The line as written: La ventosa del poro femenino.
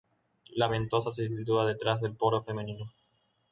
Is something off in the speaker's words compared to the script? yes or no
yes